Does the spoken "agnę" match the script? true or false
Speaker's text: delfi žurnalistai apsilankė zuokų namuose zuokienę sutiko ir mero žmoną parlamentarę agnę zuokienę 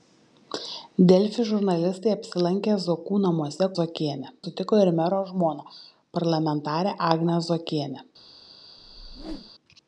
true